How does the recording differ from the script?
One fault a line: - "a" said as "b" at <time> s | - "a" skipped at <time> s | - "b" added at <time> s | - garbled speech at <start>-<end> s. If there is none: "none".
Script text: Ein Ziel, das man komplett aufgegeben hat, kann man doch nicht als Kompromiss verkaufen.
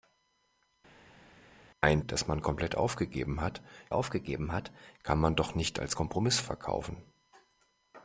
- "Ziel" skipped at 2.0 s
- "aufgegeben hat" added at 3.9 s